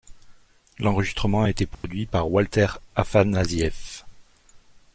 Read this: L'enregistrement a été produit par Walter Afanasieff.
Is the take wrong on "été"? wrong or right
right